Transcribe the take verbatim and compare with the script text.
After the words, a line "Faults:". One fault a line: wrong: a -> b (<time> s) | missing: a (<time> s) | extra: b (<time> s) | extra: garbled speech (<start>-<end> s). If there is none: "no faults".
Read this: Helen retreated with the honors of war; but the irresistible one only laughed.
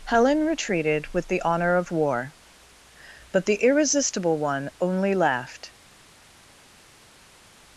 Helen retreated with the honor of war; but the irresistible one only laughed.
Faults:
wrong: honors -> honor (1.4 s)